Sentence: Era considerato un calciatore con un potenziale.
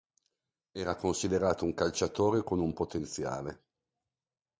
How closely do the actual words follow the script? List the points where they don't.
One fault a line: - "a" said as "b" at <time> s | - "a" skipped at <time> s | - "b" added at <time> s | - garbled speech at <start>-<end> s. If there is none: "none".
none